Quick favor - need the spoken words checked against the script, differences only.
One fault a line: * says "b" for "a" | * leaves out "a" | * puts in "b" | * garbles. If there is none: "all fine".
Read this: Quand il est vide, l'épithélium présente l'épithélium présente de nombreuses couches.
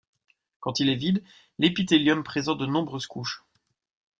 * leaves out "l'épithélium présente"